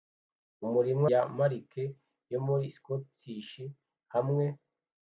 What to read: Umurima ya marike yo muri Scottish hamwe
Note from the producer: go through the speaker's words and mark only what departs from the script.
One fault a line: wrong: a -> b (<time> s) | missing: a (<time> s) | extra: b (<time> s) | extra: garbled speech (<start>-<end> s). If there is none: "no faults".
no faults